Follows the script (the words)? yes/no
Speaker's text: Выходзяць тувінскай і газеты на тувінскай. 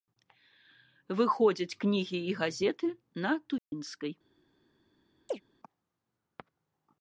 no